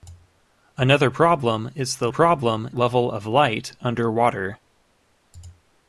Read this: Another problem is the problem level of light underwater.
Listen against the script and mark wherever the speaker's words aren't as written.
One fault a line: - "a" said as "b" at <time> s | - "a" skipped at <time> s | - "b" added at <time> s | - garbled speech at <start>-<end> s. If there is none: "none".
none